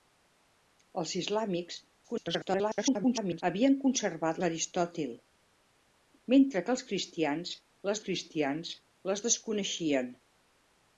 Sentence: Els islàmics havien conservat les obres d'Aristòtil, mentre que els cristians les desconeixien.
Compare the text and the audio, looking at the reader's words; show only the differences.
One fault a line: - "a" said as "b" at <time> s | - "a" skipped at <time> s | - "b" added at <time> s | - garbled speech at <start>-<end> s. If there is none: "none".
- garbled speech at 2.0-3.4 s
- "les obres" skipped at 4.4 s
- "cristians les" added at 8.1 s